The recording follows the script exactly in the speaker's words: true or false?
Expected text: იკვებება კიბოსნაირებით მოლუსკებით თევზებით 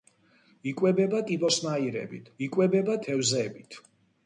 false